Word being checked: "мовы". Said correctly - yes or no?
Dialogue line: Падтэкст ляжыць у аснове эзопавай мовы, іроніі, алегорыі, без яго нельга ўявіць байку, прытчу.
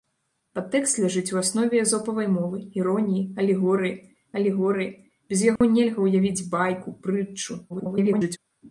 yes